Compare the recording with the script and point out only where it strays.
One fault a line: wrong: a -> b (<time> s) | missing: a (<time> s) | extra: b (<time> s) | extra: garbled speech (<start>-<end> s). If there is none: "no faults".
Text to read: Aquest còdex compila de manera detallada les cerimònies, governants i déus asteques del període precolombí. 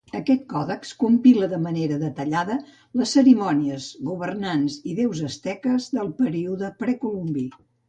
no faults